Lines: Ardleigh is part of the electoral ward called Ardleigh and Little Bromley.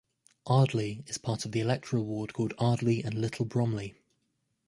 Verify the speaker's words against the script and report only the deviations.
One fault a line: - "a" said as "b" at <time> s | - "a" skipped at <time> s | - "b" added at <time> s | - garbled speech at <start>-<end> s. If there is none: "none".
none